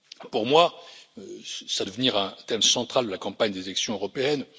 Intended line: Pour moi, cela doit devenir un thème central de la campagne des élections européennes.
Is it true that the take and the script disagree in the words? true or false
true